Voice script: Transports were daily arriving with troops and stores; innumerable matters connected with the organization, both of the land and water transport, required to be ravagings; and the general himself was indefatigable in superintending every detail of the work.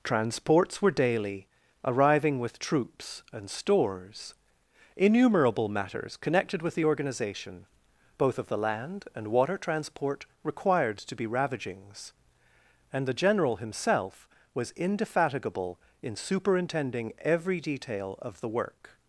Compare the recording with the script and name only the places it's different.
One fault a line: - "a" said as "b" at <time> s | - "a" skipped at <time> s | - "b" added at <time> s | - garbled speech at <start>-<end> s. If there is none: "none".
none